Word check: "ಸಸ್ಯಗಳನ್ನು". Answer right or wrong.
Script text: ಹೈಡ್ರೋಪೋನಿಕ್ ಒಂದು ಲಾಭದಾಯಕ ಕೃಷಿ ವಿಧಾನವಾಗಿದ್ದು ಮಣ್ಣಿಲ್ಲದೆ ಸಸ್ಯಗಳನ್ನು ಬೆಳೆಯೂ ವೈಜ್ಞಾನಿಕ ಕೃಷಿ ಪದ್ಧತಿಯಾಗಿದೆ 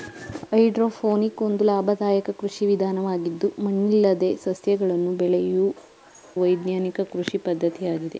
right